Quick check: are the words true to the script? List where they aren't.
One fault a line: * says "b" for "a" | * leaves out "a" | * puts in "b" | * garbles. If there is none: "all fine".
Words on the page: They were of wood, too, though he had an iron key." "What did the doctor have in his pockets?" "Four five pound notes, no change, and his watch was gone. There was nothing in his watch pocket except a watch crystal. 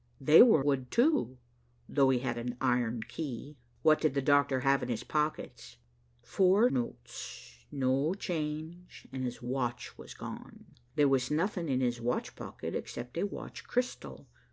* leaves out "of"
* leaves out "five pound"